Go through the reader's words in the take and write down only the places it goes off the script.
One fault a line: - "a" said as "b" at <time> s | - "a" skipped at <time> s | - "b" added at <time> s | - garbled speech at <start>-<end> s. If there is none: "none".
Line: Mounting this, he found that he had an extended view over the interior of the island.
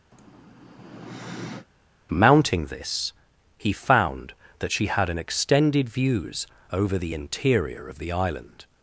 - "he" said as "she" at 4.7 s
- "view" said as "views" at 5.9 s